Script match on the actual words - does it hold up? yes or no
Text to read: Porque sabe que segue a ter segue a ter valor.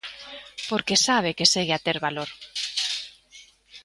no